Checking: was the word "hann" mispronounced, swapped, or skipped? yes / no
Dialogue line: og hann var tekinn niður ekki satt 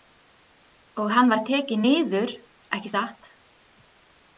no